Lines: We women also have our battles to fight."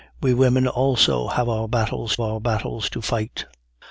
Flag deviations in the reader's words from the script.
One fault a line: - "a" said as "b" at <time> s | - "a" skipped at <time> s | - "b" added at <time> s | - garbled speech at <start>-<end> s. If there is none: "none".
- "our battles" added at 2.2 s